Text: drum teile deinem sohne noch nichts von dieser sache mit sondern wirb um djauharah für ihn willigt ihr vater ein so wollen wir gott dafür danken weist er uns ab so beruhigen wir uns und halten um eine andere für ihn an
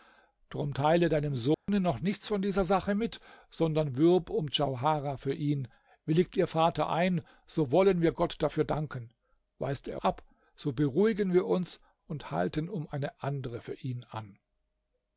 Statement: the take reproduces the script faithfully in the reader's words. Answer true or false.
false